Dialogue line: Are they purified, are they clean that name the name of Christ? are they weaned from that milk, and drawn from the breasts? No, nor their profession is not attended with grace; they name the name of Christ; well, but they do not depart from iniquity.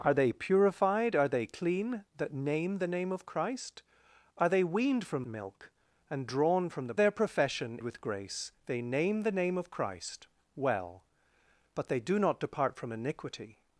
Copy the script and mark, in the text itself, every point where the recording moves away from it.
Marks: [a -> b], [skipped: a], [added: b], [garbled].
Are they purified, are they clean that name the name of Christ? are they weaned from [skipped: that] milk, and drawn from the [skipped: breasts? No, nor] their profession [skipped: is not attended] with grace; they name the name of Christ; well, but they do not depart from iniquity.